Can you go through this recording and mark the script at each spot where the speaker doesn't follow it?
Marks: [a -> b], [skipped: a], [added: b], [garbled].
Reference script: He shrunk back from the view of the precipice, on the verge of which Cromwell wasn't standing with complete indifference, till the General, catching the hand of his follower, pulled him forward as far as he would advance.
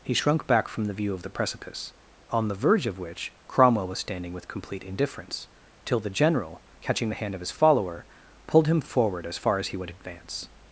He shrunk back from the view of the precipice, on the verge of which Cromwell [wasn't -> was] standing with complete indifference, till the General, catching the hand of his follower, pulled him forward as far as he would advance.